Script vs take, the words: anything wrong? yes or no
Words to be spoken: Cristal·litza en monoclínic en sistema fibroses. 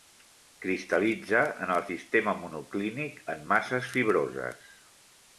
yes